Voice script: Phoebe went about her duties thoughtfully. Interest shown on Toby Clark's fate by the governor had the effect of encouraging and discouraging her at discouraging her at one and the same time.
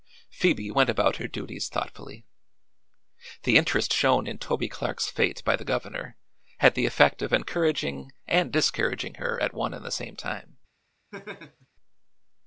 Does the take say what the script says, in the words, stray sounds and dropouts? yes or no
no